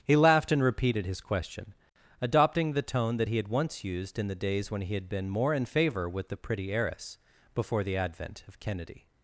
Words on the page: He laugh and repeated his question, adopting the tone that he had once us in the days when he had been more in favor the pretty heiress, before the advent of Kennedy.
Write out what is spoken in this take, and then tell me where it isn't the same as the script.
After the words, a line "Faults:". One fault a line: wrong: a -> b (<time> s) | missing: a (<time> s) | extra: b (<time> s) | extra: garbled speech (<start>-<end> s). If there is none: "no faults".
He laughed and repeated his question, adopting the tone that he had once used in the days when he had been more in favor with the pretty heiress, before the advent of Kennedy.
Faults:
wrong: laugh -> laughed (0.1 s)
wrong: us -> used (3.8 s)
extra: with (6.1 s)